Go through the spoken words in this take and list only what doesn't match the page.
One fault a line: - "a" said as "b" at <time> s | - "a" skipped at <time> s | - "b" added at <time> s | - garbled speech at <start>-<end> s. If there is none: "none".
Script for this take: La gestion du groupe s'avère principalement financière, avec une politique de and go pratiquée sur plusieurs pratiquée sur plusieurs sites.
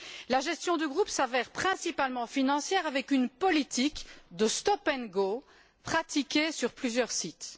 - "stop" added at 4.5 s
- "pratiquée sur plusieurs" skipped at 7.1 s